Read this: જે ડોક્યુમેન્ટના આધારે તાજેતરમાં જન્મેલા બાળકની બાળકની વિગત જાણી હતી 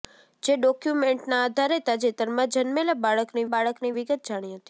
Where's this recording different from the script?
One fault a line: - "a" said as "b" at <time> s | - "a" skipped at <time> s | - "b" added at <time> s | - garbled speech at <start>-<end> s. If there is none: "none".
none